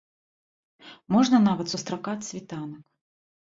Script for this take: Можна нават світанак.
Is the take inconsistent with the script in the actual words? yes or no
yes